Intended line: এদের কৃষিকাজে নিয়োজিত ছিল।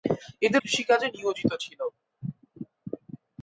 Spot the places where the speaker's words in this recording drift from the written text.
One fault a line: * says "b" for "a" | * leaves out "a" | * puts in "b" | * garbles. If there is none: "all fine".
all fine